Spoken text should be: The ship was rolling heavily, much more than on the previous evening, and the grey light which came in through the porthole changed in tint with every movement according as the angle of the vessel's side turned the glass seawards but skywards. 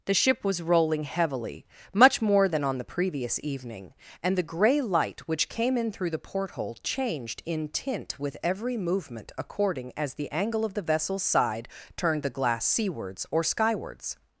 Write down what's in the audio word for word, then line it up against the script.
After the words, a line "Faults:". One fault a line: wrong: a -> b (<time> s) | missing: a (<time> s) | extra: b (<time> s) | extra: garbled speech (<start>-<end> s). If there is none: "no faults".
The ship was rolling heavily, much more than on the previous evening, and the grey light which came in through the porthole changed in tint with every movement according as the angle of the vessel's side turned the glass seawards or skywards.
Faults:
wrong: but -> or (13.3 s)